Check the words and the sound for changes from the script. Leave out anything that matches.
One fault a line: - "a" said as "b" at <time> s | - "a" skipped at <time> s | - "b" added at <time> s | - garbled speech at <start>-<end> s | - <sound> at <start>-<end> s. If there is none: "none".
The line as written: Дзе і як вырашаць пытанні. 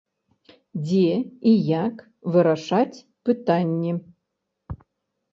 none